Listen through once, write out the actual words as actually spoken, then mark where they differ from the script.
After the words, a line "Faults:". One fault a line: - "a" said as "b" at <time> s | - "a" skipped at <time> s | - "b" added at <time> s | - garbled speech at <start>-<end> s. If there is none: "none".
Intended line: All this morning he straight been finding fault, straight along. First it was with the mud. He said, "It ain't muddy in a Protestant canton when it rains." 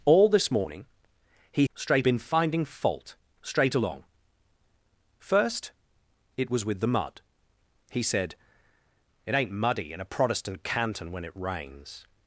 All this morning he straight been finding fault, straight along. First it was with the mud. He said, "It ain't muddy in a Protestant canton when it rains."
Faults:
none